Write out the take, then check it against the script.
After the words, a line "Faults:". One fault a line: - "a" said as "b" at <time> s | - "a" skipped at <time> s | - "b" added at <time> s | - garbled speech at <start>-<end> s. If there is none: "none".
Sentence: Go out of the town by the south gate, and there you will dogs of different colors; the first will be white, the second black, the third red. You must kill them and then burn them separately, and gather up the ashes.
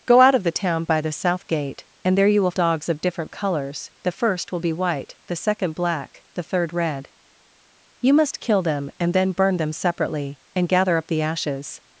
Go out of the town by the south gate, and there you will dogs of different colors; the first will be white, the second black, the third red. You must kill them and then burn them separately, and gather up the ashes.
Faults:
none